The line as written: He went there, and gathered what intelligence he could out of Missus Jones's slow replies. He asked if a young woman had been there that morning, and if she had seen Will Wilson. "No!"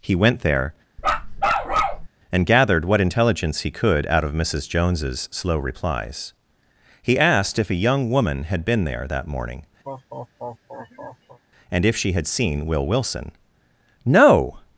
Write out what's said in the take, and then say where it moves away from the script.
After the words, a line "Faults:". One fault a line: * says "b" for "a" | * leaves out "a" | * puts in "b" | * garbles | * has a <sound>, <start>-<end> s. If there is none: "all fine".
He went there, and gathered what intelligence he could out of Missus Jones's slow replies. He asked if a young woman had been there that morning, and if she had seen Will Wilson. "No!"
Faults:
* has a bark, 1.0-2.1 s
* has a laugh, 9.8-11.4 s